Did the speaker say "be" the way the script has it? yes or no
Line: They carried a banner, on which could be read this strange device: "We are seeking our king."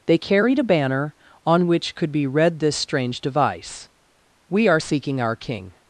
yes